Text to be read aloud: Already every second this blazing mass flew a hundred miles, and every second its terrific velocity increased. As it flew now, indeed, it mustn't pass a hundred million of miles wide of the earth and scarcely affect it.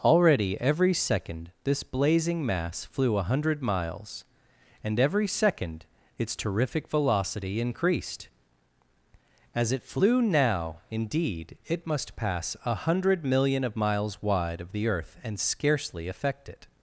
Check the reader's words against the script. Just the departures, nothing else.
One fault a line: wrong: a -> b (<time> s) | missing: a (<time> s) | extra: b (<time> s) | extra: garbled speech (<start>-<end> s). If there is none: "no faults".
wrong: mustn't -> must (11.8 s)